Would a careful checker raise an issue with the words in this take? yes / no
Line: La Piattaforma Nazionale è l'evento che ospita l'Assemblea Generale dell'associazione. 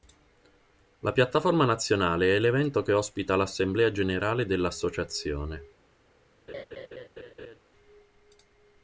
no